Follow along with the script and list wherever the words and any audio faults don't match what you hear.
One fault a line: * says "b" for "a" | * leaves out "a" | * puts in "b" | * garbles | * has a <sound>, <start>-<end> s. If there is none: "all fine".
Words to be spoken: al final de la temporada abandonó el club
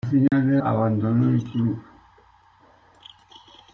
* has a dropout, 0.3-0.3 s
* leaves out "la temporada"